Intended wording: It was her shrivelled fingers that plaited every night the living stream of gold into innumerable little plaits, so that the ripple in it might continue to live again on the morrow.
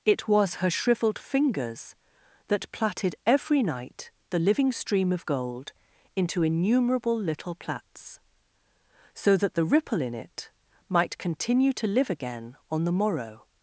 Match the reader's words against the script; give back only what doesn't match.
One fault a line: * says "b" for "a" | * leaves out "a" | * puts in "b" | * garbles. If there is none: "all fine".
all fine